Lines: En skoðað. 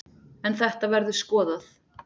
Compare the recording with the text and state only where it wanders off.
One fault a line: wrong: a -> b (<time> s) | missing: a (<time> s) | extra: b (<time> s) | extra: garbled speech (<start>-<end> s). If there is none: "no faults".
extra: þetta verður (0.6 s)